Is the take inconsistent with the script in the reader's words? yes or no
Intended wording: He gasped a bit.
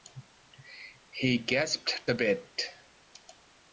no